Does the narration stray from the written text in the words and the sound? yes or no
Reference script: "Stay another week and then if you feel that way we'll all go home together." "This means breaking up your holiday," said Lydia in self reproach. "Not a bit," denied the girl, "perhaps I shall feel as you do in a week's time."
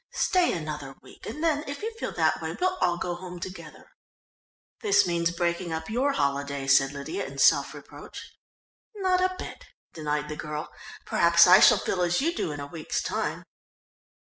no